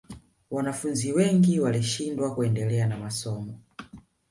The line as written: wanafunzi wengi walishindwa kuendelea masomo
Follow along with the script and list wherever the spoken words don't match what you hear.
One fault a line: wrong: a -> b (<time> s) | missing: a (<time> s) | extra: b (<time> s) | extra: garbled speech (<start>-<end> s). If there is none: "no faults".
extra: na (2.9 s)